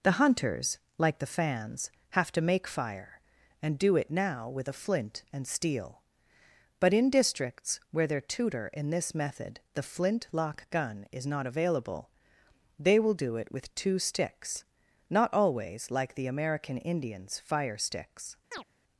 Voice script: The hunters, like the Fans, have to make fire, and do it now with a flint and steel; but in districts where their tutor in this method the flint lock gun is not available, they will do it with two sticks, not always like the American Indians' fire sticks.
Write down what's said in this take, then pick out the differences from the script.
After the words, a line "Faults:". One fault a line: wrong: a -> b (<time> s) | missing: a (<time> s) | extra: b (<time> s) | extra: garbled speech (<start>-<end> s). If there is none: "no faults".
The hunters, like the Fans, have to make fire, and do it now with a flint and steel; but in districts where their tutor in this method the flint lock gun is not available, they will do it with two sticks, not always like the American Indians' fire sticks.
Faults:
no faults